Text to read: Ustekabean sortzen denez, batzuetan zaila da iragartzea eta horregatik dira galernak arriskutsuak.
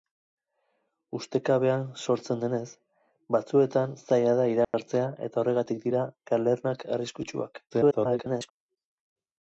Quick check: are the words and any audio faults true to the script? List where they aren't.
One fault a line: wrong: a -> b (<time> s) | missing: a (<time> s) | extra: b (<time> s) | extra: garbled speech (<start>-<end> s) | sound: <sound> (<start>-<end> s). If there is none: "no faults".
sound: dropout (4.6-4.7 s)
extra: garbled speech (7.7-8.5 s)